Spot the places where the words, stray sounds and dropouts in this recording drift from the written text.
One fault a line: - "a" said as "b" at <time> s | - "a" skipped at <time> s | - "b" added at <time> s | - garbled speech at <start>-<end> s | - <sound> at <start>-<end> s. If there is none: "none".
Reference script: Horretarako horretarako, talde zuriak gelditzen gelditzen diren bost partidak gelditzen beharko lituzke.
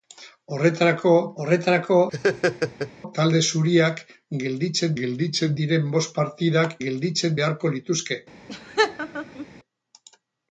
- laugh at 2.1-2.9 s
- laugh at 8.5-9.5 s